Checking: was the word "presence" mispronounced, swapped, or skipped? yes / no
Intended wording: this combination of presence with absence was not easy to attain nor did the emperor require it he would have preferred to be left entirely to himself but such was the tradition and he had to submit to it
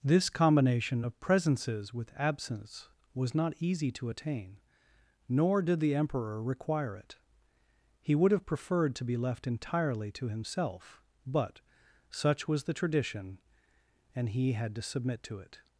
yes